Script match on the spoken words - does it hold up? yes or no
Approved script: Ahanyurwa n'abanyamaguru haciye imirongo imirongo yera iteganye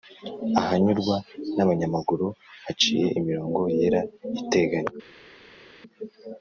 no